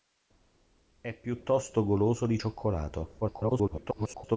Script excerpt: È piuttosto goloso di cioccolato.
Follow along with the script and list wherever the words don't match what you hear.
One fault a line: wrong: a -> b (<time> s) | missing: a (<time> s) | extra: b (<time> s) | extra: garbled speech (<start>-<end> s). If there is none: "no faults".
extra: garbled speech (3.2-4.4 s)